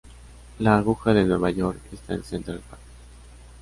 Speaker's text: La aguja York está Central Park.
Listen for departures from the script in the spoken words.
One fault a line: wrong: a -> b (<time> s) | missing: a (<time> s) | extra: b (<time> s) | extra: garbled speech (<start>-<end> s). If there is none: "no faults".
extra: de Nueva (1.1 s)
extra: en (2.1 s)